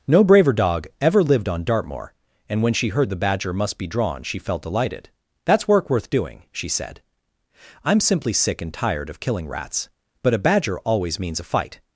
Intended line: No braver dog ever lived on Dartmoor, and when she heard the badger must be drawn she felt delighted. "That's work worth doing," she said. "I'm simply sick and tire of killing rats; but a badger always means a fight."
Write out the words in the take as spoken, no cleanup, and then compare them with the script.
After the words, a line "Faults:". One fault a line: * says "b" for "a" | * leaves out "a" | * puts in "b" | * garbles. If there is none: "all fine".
No braver dog ever lived on Dartmoor, and when she heard the badger must be drawn she felt delighted. "That's work worth doing," she said. "I'm simply sick and tired of killing rats; but a badger always means a fight."
Faults:
* says "tired" for "tire"